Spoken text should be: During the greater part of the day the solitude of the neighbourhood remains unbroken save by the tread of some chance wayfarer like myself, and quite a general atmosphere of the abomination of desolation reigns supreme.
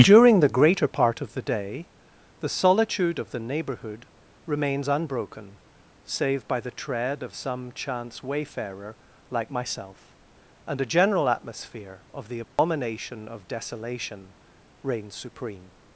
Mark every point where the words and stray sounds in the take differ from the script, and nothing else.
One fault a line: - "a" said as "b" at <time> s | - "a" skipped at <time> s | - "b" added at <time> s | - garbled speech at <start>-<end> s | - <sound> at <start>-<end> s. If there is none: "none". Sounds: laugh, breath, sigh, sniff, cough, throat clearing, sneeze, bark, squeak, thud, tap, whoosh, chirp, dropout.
- "quite" skipped at 10.8 s
- dropout at 12.4-12.6 s